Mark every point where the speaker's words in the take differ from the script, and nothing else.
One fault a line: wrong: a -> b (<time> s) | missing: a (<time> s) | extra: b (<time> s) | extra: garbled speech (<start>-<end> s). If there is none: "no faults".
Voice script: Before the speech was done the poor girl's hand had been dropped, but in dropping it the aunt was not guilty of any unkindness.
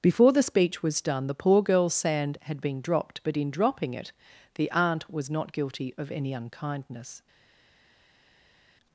wrong: hand -> sand (1.9 s)